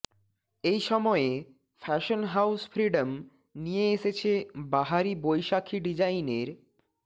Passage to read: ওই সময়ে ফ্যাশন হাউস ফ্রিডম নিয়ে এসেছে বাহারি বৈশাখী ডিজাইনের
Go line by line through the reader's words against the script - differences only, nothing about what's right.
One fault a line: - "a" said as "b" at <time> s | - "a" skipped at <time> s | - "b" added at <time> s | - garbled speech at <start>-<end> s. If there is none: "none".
- "ওই" said as "এই" at 0.6 s